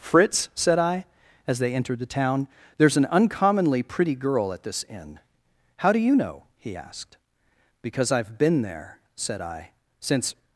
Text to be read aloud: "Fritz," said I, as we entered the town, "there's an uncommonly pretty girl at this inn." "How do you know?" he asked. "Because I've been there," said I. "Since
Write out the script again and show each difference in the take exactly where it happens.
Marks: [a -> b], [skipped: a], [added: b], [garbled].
"Fritz," said I, as [we -> they] entered the town, "there's an uncommonly pretty girl at this inn." "How do you know?" he asked. "Because I've been there," said I. "Since